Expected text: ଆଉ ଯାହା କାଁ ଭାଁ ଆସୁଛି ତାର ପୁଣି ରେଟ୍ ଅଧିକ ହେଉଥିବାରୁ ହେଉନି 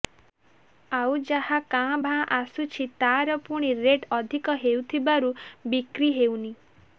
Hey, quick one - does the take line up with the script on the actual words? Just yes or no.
no